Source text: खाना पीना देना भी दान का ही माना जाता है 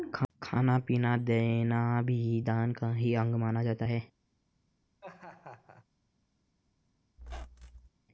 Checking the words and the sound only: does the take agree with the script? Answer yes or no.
no